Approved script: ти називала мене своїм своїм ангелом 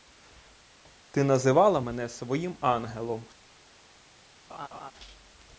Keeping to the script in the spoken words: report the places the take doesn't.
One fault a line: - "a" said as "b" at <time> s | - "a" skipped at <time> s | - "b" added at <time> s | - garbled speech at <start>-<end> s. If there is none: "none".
- "своїм" skipped at 2.6 s